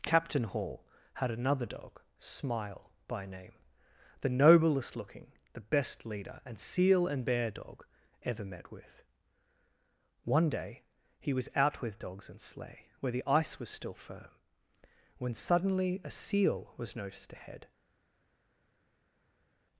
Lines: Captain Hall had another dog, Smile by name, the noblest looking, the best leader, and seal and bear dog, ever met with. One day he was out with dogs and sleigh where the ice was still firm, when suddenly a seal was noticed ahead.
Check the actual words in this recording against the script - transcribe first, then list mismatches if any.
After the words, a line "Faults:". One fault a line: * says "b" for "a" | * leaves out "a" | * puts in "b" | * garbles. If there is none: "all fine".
Captain Hall had another dog, Smile by name, the noblest looking, the best leader, and seal and bear dog, ever met with. One day he was out with dogs and sleigh where the ice was still firm, when suddenly a seal was noticed ahead.
Faults:
all fine